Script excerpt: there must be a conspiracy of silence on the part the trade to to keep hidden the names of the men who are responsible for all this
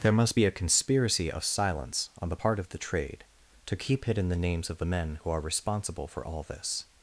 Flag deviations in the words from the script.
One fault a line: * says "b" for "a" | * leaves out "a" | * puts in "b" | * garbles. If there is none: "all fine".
* puts in "of"
* leaves out "to"